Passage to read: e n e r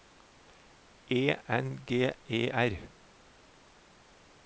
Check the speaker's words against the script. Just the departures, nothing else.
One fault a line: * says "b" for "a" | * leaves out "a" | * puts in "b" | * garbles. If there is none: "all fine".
* puts in "g"